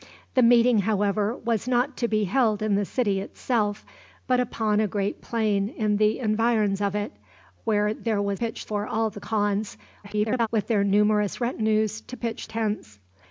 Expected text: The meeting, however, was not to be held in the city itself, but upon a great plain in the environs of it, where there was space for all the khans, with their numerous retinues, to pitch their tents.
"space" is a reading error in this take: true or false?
true